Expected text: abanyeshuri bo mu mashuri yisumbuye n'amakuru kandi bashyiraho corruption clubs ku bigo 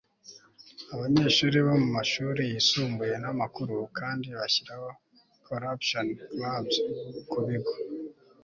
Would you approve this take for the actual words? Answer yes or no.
yes